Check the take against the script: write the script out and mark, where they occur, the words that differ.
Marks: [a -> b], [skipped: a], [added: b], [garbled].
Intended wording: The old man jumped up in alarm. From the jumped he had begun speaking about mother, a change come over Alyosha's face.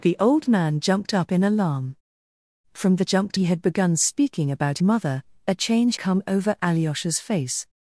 The old man jumped up in alarm. From the jumped he had begun speaking about mother, a change come over Alyosha's face.